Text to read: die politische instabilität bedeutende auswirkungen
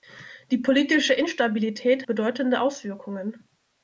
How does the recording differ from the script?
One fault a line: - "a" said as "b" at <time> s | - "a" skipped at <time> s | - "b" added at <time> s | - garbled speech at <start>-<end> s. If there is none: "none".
none